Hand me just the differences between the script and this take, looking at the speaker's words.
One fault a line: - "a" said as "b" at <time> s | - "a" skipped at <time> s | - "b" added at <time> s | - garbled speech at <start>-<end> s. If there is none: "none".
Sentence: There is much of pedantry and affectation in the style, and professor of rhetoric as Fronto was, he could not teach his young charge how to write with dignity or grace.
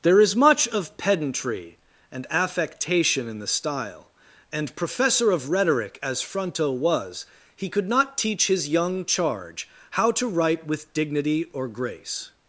none